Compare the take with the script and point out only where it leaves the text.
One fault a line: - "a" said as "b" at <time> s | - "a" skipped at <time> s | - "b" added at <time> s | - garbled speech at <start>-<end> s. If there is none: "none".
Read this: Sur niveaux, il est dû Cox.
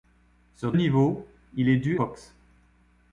none